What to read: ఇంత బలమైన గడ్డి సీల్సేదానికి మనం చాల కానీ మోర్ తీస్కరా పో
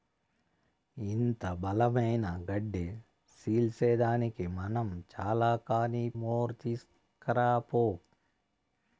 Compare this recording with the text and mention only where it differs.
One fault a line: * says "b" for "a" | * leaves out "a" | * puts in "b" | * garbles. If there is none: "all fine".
all fine